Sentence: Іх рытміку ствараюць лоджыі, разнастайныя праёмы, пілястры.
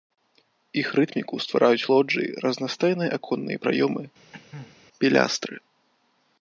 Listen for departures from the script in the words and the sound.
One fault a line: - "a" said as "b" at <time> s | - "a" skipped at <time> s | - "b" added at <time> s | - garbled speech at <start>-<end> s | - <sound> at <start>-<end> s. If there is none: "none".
- "аконныя" added at 3.2 s
- cough at 4.3-4.8 s